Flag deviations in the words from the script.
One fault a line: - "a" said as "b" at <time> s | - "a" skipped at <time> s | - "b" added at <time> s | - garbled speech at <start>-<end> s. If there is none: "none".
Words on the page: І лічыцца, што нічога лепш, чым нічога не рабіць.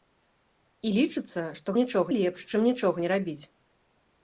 none